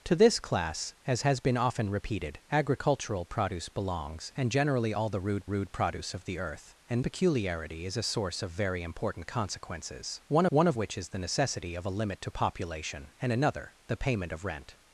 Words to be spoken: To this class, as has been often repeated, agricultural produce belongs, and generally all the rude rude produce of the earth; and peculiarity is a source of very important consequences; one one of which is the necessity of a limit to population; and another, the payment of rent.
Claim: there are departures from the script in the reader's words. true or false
false